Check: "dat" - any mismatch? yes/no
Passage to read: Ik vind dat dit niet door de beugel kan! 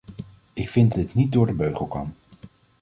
yes